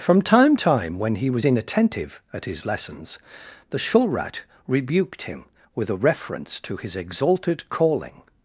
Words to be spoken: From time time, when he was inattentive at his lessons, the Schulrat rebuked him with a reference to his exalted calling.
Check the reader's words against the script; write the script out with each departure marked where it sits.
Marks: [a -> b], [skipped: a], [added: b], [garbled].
From time time, when he was inattentive at his lessons, the Schulrat rebuked him with a reference to his exalted calling.